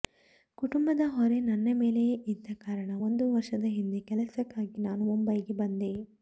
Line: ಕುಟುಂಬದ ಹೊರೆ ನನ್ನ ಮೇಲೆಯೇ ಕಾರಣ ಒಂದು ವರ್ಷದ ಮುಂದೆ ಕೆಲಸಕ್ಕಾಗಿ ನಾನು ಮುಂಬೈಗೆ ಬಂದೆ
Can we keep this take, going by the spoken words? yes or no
no